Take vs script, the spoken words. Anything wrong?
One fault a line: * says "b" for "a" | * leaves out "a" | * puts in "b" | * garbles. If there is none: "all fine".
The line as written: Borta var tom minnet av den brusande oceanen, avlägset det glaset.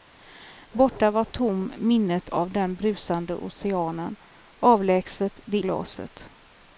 all fine